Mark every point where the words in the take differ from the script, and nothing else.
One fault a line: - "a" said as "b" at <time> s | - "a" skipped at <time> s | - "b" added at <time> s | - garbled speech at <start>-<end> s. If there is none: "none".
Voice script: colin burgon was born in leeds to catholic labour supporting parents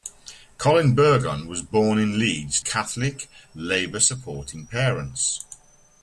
- "to" skipped at 2.6 s